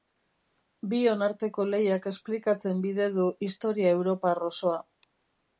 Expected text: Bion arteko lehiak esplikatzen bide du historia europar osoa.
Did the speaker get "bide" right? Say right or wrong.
right